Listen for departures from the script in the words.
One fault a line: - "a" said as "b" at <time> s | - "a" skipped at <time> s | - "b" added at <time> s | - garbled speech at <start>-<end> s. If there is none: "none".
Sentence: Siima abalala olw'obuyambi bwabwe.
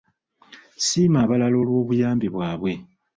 none